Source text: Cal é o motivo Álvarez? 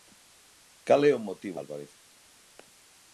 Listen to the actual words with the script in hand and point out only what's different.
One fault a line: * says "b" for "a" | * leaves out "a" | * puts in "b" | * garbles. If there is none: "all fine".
all fine